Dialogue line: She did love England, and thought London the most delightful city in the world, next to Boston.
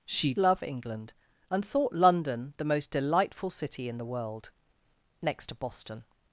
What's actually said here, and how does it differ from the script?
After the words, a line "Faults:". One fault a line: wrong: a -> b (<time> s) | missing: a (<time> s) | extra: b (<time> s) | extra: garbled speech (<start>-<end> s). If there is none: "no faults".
She love England, and thought London the most delightful city in the world, next to Boston.
Faults:
missing: did (0.3 s)